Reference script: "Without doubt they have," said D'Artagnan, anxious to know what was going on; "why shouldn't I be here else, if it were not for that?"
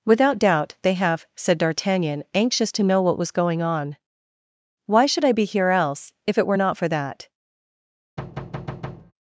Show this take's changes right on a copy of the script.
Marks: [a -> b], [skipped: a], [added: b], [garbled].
"Without doubt they have," said D'Artagnan, anxious to know what was going on; "why [shouldn't -> should] I be here else, if it were not for that?"